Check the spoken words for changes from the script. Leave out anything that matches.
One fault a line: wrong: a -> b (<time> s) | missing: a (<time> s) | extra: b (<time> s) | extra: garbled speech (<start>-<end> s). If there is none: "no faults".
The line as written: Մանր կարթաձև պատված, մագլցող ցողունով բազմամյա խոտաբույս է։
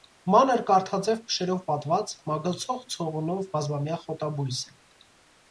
extra: փշերով (1.3 s)